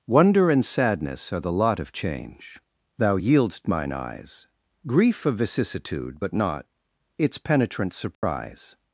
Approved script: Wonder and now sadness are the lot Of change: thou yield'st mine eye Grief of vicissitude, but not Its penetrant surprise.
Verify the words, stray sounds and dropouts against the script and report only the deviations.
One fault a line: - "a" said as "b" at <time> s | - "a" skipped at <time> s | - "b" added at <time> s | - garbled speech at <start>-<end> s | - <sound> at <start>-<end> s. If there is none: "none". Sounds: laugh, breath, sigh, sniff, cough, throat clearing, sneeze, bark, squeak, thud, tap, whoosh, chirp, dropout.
- "now" skipped at 0.7 s
- "eye" said as "eyes" at 3.9 s
- dropout at 8.1-8.2 s